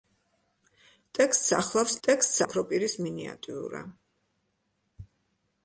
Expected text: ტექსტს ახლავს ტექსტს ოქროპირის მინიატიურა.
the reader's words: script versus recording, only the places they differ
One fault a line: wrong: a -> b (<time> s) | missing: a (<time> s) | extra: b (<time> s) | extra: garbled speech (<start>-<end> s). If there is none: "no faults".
no faults